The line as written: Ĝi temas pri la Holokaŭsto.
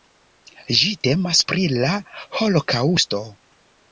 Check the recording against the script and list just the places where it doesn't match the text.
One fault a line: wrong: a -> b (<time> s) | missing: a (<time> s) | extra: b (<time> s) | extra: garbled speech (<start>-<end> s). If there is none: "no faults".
no faults